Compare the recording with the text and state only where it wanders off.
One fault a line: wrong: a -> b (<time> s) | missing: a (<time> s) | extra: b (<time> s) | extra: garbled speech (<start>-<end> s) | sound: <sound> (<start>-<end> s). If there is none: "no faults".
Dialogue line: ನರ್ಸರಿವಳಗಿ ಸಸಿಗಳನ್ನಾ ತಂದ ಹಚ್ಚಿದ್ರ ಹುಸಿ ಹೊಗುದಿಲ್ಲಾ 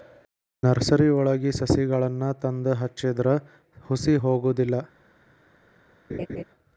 sound: laugh (6.1-6.4 s)